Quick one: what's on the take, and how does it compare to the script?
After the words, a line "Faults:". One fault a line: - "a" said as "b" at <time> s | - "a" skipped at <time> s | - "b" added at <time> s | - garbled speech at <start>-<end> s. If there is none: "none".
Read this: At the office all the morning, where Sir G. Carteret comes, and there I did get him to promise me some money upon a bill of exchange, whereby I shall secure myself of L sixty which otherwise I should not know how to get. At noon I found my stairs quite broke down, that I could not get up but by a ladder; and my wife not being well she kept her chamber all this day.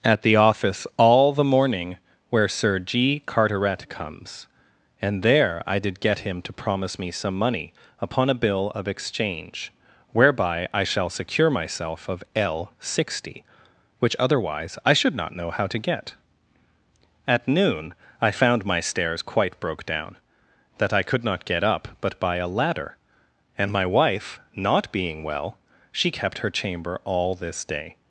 At the office all the morning, where Sir G. Carteret comes, and there I did get him to promise me some money upon a bill of exchange, whereby I shall secure myself of L sixty which otherwise I should not know how to get. At noon I found my stairs quite broke down, that I could not get up but by a ladder; and my wife not being well she kept her chamber all this day.
Faults:
none